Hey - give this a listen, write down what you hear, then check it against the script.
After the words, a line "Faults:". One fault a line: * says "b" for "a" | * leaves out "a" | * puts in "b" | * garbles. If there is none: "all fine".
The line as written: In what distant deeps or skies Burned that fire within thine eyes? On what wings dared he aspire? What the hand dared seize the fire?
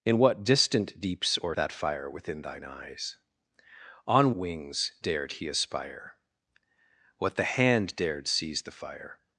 In what distant deeps or that fire within thine eyes? On wings dared he aspire? What the hand dared seize the fire?
Faults:
* leaves out "skies Burned"
* leaves out "what"